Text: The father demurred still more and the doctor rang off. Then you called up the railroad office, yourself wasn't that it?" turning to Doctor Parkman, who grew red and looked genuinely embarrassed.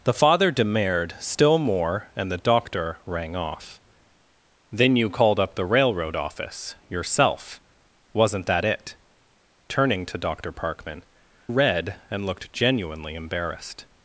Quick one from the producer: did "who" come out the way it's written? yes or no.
no